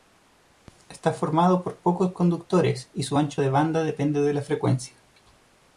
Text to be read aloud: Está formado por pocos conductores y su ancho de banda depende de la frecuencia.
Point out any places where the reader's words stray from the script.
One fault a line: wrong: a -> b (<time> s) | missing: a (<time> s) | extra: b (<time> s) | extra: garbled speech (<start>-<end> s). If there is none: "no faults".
no faults